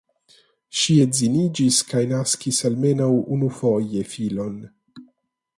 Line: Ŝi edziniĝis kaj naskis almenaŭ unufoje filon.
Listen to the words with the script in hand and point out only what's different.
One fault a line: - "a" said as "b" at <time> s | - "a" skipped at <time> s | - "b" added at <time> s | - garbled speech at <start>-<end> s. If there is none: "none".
none